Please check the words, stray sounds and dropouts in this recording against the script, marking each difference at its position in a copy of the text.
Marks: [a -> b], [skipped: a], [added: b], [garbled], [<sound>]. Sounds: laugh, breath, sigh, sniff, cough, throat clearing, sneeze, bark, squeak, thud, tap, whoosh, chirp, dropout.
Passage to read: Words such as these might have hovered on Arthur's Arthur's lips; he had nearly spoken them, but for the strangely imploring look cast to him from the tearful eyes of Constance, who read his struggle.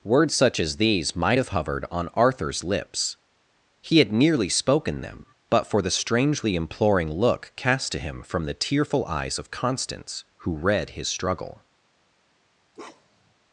Words such as these might have hovered on Arthur's [skipped: Arthur's] lips; he had nearly spoken them, but for the strangely imploring look cast to him from the tearful eyes of Constance, who read his struggle. [bark]